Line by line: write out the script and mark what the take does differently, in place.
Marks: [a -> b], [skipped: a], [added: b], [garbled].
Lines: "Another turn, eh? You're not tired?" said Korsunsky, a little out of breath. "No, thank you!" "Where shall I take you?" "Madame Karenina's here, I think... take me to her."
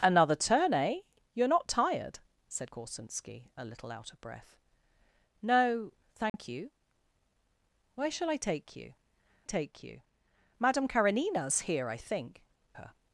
"Another turn, eh? You're not tired?" said Korsunsky, a little out of breath. "No, thank you!" "Where shall I take you?" [added: take you] "Madame Karenina's here, I think... [skipped: take me to] her."